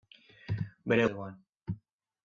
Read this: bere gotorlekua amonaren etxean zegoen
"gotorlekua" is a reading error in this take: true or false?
true